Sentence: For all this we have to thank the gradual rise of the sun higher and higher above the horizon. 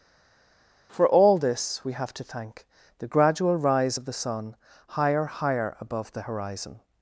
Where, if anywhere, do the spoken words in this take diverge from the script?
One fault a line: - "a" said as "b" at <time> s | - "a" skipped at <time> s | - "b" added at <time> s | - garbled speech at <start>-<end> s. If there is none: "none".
- "and" skipped at 5.3 s